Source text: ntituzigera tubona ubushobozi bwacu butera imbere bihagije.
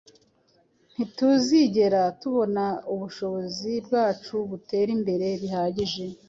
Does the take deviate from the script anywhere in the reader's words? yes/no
no